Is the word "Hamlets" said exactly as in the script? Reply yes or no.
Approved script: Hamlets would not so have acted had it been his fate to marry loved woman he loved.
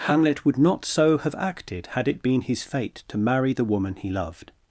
no